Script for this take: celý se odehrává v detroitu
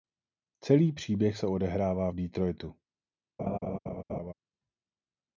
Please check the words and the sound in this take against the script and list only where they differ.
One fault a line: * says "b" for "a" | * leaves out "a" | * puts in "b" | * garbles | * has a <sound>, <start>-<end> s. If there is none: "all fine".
* puts in "příběh"
* has a laugh, 3.4-4.3 s